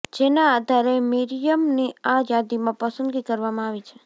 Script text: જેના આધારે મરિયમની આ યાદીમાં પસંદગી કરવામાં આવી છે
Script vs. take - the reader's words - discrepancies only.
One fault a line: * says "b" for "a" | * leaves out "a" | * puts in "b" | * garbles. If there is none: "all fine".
all fine